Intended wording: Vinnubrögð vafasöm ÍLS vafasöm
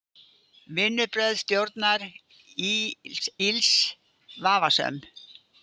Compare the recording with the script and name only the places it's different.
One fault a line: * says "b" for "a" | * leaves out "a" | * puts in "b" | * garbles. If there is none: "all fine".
* says "stjórnar" for "vafasöm"